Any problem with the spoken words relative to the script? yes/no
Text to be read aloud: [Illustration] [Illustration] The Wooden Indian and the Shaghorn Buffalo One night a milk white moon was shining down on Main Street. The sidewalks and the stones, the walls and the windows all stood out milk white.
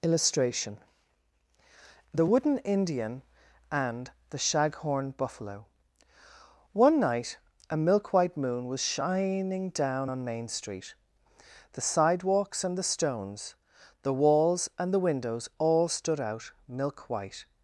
yes